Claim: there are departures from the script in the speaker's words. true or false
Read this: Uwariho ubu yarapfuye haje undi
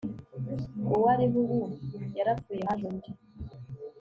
false